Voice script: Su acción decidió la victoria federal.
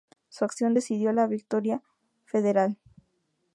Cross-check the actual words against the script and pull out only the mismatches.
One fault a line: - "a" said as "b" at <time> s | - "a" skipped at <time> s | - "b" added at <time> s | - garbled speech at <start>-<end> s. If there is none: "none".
none